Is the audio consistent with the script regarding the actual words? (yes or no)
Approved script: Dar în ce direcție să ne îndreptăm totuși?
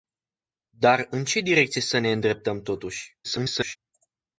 no